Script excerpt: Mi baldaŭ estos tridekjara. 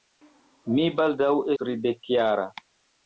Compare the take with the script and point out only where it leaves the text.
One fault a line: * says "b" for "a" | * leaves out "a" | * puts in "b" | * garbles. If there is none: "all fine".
* leaves out "estos"